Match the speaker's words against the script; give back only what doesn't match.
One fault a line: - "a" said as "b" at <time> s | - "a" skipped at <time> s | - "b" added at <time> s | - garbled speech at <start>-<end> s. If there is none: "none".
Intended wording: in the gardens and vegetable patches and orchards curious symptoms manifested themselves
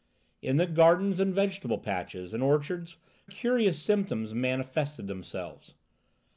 none